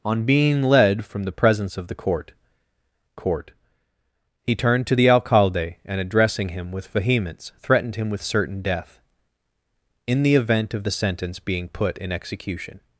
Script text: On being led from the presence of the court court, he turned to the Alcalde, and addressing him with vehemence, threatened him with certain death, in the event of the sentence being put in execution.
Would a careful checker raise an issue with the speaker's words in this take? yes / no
no